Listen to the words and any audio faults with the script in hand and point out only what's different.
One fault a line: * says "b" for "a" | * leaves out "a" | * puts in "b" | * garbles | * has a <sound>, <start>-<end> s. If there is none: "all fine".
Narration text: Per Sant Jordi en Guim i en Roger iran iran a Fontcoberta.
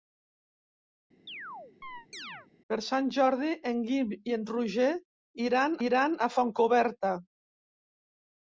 * has a chirp, 1.3-2.5 s